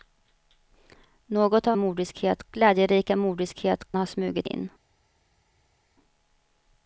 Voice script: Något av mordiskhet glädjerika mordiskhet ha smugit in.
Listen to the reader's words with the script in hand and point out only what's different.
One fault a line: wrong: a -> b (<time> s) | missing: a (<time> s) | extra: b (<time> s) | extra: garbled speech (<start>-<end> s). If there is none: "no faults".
no faults